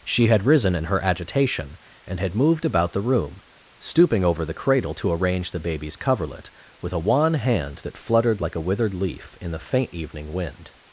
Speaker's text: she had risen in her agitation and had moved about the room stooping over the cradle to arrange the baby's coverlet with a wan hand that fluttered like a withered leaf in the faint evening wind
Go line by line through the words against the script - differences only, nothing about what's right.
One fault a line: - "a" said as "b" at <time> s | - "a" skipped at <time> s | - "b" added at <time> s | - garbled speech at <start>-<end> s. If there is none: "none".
none